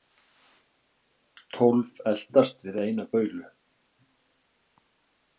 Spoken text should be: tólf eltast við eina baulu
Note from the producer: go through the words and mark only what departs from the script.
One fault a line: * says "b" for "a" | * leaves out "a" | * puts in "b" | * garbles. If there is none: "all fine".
all fine